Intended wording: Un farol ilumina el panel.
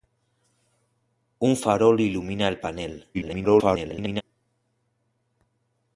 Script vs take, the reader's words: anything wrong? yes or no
yes